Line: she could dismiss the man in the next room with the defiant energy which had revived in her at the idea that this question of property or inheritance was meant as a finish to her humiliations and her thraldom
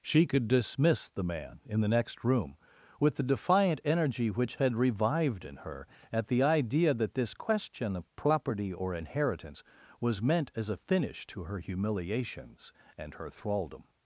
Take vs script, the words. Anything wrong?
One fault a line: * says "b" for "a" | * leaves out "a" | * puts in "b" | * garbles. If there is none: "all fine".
all fine